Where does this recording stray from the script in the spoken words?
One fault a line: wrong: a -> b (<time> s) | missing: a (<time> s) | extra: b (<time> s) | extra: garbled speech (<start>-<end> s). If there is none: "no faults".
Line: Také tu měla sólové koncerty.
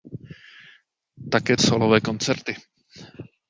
missing: tu měla (1.6 s)